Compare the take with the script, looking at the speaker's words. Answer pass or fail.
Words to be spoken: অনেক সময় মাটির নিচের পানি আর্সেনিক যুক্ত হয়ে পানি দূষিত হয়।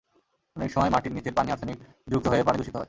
pass